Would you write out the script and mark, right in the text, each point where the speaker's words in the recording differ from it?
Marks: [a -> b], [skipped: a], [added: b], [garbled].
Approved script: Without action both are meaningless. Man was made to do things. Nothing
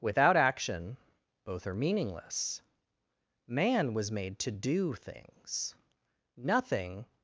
Without action both are meaningless. Man was made to do things. Nothing